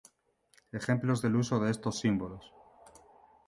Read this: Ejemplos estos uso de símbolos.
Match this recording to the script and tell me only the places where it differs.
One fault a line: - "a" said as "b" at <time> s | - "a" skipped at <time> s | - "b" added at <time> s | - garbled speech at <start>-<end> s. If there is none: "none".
- "estos" said as "del" at 1.2 s
- "estos" added at 1.7 s